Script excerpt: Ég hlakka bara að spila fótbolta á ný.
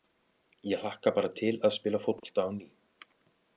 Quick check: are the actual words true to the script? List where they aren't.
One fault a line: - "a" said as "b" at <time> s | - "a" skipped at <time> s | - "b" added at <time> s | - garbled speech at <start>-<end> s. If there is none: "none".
- "til" added at 1.4 s